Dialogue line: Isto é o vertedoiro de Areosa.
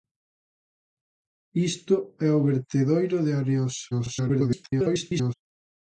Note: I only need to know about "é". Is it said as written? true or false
true